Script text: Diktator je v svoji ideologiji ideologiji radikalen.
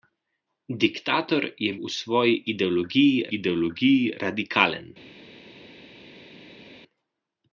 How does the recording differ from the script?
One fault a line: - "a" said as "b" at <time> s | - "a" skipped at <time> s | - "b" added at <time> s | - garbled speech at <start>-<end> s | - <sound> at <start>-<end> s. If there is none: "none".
none